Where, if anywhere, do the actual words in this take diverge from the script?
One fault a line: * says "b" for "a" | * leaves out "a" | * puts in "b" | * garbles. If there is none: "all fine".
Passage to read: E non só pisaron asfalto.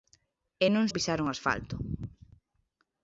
* leaves out "só"